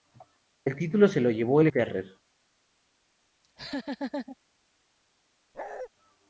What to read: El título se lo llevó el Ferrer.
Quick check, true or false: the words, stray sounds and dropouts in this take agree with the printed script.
false